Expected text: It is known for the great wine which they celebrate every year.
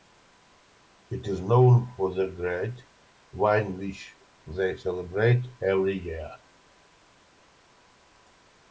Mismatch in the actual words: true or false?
false